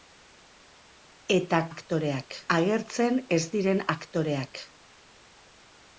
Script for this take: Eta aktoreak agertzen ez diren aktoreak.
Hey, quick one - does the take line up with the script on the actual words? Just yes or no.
yes